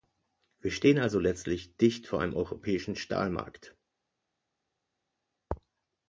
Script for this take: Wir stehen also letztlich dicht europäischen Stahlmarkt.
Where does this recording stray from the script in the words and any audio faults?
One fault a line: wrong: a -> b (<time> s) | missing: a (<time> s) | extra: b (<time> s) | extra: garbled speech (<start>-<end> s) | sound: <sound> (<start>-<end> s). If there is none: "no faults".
extra: vor einem (2.1 s)